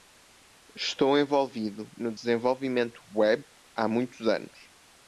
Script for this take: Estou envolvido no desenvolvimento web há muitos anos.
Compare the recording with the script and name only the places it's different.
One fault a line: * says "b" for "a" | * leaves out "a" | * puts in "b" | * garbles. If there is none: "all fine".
all fine